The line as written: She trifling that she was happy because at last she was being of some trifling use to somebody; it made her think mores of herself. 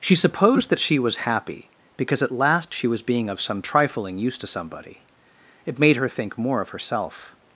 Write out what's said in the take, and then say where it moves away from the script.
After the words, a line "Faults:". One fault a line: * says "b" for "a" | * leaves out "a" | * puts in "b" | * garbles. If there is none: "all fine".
She supposed that she was happy because at last she was being of some trifling use to somebody; it made her think more of herself.
Faults:
* says "supposed" for "trifling"
* says "more" for "mores"